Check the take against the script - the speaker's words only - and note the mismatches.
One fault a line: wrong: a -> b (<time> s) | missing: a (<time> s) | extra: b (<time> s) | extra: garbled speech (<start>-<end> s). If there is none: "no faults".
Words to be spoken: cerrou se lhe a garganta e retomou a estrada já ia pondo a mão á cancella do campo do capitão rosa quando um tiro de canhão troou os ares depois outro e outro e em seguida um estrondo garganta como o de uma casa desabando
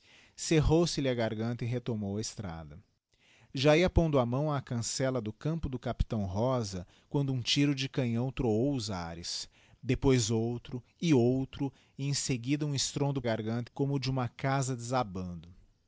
no faults